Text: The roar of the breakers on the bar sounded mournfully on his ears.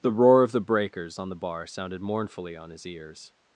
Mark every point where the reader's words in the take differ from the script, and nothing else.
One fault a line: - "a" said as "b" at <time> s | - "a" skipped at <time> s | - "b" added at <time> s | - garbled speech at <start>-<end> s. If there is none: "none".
none